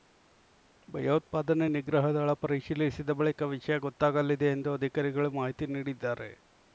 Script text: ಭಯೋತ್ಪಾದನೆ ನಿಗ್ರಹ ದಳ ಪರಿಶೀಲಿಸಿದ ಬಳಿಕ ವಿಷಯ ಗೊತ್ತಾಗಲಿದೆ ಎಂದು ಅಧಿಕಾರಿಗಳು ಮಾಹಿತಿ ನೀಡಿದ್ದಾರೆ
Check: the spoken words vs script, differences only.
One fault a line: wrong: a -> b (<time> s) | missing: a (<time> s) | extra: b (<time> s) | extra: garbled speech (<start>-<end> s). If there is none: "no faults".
no faults